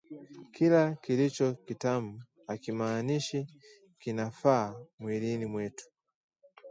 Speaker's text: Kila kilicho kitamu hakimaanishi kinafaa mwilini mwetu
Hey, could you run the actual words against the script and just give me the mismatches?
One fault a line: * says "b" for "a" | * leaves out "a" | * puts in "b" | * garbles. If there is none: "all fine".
all fine